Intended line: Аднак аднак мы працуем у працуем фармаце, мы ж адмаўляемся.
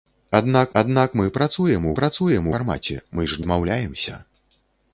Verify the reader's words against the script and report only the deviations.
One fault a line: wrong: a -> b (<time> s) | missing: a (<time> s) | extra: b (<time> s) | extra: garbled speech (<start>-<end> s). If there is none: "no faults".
no faults